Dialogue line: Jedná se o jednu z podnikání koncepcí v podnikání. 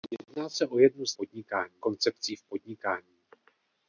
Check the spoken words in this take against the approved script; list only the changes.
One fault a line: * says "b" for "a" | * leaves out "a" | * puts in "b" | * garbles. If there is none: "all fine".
all fine